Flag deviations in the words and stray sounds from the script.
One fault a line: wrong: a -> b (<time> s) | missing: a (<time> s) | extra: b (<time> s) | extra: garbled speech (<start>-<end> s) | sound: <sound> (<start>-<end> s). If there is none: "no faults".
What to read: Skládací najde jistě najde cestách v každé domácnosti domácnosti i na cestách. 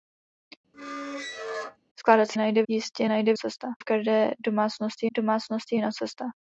sound: squeak (0.7-1.8 s)